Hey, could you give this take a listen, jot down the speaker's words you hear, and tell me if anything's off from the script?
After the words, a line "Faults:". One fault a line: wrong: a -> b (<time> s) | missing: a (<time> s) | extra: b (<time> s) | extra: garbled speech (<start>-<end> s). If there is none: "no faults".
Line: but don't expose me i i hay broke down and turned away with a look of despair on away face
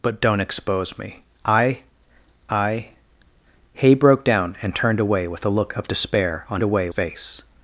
but don't expose me i i hay broke down and turned away with a look of despair on away face
Faults:
no faults